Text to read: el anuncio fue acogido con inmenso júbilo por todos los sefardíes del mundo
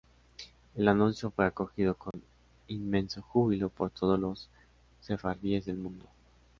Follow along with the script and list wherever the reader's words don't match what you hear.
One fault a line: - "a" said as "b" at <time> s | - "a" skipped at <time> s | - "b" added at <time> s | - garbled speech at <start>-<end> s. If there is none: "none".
none